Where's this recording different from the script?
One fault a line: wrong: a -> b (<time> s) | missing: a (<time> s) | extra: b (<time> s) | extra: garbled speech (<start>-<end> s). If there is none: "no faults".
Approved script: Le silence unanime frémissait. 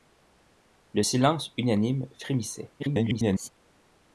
extra: garbled speech (2.8-3.5 s)